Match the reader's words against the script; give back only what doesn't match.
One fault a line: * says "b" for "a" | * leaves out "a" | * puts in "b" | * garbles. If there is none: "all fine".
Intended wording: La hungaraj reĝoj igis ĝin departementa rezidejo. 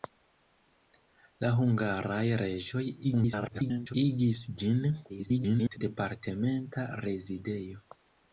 * garbles
* garbles